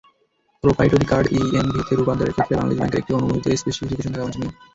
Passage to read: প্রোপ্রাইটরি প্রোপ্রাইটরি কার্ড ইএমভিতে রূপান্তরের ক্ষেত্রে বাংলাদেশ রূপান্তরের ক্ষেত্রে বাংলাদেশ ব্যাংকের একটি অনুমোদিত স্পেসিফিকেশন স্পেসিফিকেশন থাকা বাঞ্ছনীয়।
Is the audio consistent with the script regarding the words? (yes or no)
no